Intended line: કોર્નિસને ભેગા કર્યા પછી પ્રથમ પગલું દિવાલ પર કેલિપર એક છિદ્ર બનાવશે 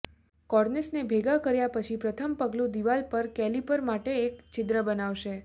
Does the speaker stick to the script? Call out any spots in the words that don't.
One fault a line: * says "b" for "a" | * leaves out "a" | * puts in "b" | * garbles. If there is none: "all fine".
* puts in "માટે"